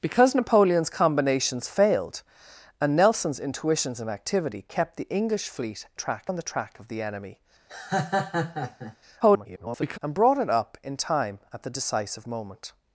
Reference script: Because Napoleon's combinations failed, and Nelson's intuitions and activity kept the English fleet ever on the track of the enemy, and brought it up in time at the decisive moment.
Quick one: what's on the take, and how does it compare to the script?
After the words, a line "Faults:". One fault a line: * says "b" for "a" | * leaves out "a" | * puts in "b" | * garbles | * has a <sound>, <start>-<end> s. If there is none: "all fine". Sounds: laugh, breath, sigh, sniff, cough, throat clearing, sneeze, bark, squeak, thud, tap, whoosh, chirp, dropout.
Because Napoleon's combinations failed, and Nelson's intuitions and activity kept the English fleet track on the track of the enemy, [garbled] and brought it up in time at the decisive moment.
Faults:
* says "track" for "ever"
* has a laugh, 7.7-9.0 s
* garbles